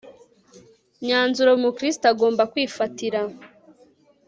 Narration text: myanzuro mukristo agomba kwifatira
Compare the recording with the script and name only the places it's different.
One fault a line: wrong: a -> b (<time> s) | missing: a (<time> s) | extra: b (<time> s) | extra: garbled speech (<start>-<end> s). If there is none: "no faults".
no faults